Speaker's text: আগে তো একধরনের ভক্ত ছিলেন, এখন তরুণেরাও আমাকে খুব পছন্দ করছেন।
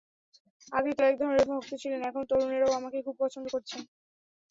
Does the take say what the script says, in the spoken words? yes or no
yes